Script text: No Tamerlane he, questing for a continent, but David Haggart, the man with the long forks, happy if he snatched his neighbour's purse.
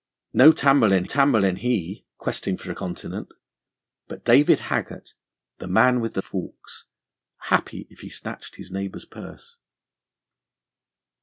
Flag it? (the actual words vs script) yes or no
yes